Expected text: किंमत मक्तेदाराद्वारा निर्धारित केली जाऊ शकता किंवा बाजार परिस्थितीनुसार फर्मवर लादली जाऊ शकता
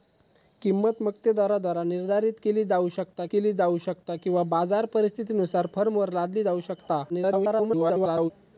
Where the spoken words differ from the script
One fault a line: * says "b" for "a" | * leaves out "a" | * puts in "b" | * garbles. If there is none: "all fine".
* puts in "केली जाऊ शकता"
* garbles